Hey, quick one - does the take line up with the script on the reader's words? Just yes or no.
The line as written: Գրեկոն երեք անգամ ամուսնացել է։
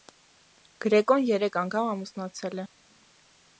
yes